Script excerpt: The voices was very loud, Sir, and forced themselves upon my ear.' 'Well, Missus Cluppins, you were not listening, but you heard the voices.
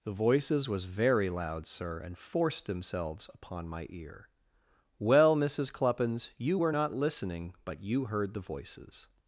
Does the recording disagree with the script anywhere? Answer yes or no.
no